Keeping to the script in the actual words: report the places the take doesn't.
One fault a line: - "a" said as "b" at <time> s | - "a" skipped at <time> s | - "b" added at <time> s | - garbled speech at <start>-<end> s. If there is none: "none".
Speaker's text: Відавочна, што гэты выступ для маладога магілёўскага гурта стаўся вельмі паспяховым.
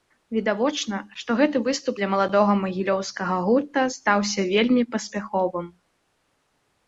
none